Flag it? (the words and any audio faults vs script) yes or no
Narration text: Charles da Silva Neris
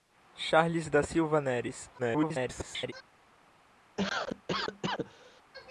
yes